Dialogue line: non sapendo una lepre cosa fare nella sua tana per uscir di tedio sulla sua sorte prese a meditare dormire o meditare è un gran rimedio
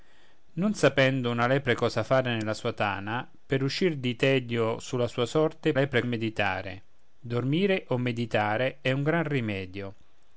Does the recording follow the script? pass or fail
fail